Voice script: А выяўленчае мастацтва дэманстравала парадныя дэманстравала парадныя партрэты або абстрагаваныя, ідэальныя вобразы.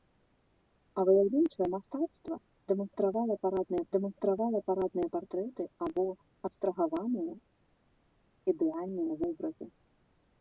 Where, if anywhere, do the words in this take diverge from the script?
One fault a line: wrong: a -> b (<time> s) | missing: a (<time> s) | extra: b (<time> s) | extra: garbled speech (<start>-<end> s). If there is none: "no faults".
no faults